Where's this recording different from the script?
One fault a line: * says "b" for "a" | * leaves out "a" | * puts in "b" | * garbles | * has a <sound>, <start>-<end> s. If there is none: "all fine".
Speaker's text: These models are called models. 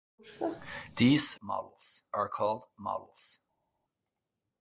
all fine